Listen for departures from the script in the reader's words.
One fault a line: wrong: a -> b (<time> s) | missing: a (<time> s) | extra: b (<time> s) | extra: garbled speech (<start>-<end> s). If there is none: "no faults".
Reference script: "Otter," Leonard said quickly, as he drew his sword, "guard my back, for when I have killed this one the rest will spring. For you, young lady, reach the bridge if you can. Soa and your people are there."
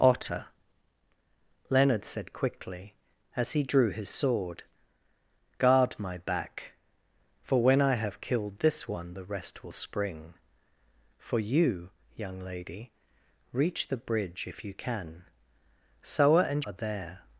missing: your people (16.6 s)